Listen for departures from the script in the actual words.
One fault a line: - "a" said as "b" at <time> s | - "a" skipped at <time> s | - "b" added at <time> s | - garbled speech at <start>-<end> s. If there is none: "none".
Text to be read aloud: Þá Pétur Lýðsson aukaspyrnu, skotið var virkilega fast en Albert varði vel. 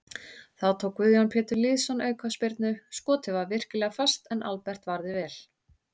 - "tók Guðjón" added at 0.8 s